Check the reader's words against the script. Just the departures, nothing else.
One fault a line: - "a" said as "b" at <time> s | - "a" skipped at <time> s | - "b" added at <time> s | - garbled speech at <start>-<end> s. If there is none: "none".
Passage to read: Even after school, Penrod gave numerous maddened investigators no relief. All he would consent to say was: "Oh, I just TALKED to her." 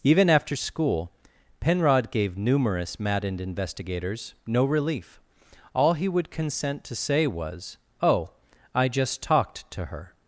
none